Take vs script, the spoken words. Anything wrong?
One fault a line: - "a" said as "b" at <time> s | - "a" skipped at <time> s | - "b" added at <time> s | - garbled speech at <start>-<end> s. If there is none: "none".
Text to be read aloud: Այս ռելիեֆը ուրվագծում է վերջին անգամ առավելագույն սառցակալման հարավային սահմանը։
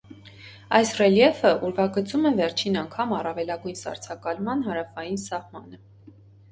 none